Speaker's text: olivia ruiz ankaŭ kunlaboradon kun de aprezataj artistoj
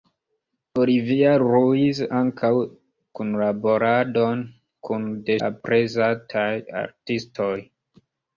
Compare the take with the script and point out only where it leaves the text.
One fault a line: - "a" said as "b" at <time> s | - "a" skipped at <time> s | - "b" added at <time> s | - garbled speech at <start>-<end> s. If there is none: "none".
none